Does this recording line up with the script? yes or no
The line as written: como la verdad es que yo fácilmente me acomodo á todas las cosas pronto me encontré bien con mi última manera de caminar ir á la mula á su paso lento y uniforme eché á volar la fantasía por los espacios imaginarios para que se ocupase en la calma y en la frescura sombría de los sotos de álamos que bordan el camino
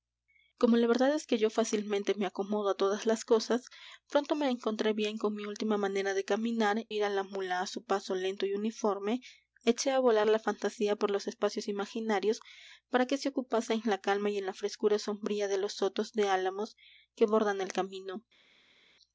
yes